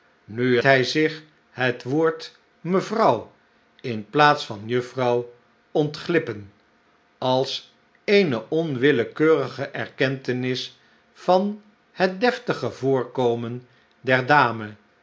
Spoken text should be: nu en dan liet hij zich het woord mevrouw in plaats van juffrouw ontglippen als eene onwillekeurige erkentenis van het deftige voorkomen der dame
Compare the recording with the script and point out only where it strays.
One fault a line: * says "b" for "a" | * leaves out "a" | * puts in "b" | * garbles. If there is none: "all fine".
* leaves out "en dan liet"